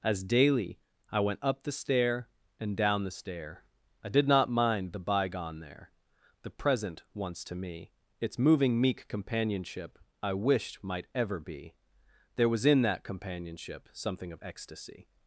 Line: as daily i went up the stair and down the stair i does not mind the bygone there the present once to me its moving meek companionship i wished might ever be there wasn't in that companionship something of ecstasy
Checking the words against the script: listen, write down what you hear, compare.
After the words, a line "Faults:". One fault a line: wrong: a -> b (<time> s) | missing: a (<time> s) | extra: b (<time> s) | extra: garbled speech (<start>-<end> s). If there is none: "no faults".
as daily i went up the stair and down the stair i did not mind the bygone there the present once to me its moving meek companionship i wished might ever be there was in that companionship something of ecstasy
Faults:
wrong: does -> did (4.1 s)
wrong: wasn't -> was (12.5 s)